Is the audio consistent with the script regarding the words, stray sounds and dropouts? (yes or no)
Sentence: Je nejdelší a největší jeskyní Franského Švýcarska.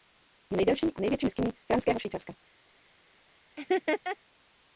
no